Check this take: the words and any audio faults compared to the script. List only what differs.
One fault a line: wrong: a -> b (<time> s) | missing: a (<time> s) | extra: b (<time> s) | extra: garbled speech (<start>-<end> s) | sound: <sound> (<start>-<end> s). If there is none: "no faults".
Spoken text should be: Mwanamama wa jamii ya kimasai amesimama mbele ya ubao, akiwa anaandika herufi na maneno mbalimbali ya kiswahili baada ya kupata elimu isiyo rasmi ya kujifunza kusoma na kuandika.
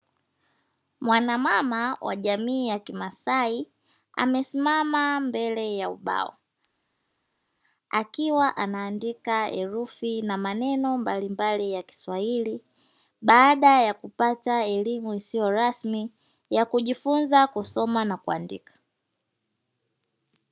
no faults